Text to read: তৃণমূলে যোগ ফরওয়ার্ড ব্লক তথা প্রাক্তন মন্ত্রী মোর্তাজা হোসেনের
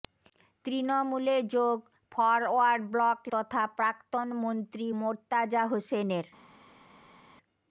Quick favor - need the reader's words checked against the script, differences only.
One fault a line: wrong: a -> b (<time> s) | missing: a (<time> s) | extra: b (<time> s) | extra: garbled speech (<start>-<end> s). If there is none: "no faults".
no faults